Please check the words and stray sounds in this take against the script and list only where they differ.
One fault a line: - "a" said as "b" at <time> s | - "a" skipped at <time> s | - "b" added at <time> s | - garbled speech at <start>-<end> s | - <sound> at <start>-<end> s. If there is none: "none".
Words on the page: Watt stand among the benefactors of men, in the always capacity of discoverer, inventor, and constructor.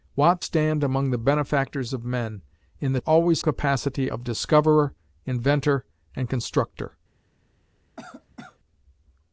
- cough at 8.0-8.6 s